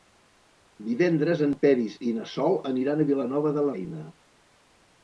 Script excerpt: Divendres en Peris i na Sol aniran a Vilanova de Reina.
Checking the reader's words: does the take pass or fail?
pass